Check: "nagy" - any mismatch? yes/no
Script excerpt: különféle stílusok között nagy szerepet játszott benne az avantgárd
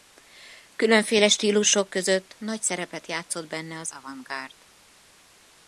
no